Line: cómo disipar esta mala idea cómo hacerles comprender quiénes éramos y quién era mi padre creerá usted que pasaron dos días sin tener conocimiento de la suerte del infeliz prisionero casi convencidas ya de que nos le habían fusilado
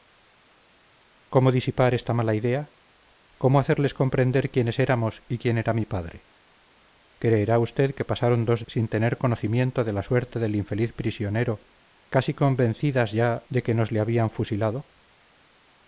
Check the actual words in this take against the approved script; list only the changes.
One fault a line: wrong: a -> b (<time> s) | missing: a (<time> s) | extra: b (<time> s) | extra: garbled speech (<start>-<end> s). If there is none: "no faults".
missing: días (8.7 s)